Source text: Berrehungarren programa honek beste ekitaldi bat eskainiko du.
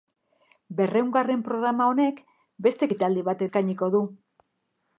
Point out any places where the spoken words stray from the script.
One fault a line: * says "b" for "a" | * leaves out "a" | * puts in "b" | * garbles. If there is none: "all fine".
all fine